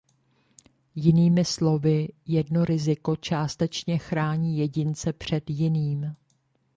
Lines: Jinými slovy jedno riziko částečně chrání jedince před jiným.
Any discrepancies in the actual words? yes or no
no